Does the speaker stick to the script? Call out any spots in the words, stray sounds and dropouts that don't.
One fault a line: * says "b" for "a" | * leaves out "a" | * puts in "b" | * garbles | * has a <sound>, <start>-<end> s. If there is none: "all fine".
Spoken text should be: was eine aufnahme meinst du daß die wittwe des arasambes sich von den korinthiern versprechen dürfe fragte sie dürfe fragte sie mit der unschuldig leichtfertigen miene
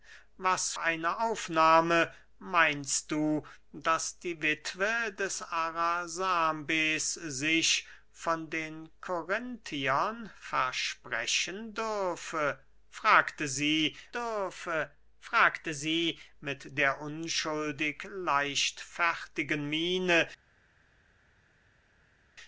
all fine